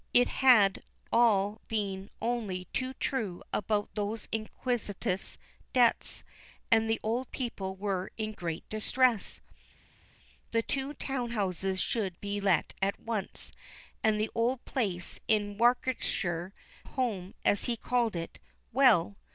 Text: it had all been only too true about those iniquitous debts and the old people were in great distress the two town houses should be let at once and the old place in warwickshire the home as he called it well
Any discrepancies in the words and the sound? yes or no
yes